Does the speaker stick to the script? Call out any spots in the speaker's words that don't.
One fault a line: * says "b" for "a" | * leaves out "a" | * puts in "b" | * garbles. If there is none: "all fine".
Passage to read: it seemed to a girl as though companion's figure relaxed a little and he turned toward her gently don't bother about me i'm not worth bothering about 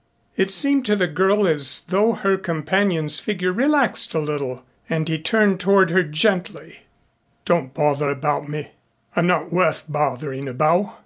* says "the" for "a"
* puts in "her"